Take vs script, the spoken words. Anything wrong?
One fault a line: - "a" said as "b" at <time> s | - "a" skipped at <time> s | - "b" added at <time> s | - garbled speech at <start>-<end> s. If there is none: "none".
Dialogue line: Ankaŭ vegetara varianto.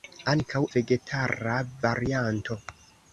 none